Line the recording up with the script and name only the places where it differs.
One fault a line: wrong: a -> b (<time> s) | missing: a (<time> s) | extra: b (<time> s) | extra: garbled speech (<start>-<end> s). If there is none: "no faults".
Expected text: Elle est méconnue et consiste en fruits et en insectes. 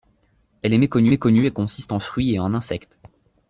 extra: méconnue (1.1 s)